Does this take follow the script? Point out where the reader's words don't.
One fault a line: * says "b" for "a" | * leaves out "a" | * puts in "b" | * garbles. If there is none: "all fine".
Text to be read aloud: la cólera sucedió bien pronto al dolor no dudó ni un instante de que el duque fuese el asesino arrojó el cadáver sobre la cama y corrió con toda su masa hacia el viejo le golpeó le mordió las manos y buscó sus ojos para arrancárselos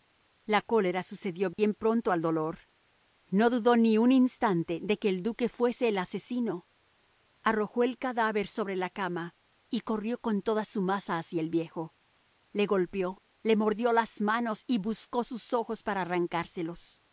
all fine